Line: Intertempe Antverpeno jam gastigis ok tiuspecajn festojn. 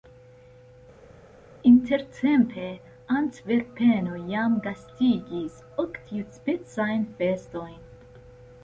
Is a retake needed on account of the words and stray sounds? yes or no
no